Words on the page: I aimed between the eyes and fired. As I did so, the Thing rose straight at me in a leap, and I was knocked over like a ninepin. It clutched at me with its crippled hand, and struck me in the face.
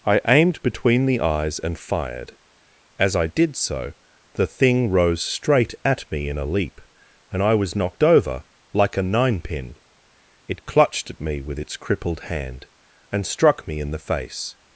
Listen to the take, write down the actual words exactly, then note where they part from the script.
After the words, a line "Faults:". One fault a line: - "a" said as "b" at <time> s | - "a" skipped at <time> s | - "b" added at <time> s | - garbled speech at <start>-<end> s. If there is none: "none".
I aimed between the eyes and fired. As I did so, the Thing rose straight at me in a leap, and I was knocked over like a ninepin. It clutched at me with its crippled hand, and struck me in the face.
Faults:
none